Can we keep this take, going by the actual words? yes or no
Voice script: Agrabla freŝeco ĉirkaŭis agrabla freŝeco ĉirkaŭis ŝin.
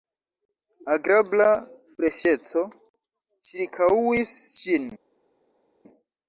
no